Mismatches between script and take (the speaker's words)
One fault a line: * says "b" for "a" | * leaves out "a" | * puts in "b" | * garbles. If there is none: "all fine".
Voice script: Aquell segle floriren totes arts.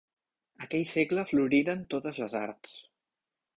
* puts in "les"